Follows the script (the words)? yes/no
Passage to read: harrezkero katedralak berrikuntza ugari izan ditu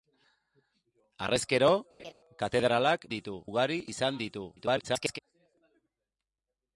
no